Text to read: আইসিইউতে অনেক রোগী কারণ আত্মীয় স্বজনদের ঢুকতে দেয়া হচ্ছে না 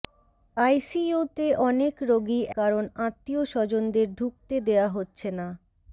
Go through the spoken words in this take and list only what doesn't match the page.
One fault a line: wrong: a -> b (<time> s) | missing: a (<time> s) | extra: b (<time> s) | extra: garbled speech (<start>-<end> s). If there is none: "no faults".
no faults